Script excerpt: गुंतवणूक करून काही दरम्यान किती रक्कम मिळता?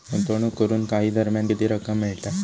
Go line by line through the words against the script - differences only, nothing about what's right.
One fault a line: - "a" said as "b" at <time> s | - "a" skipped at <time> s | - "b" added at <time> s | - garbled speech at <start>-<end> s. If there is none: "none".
none